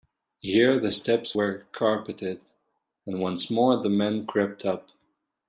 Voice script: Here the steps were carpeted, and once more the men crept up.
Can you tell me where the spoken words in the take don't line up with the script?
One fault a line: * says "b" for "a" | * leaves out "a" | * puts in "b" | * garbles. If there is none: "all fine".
all fine